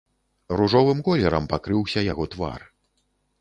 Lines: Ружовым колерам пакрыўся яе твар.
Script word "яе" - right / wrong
wrong